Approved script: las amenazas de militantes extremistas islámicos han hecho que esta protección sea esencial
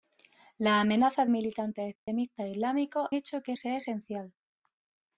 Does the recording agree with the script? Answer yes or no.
no